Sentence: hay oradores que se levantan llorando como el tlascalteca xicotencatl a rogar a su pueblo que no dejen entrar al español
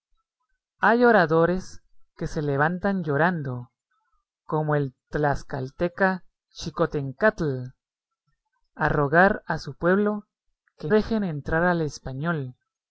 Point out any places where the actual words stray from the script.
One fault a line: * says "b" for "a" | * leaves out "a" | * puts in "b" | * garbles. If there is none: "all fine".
* leaves out "no"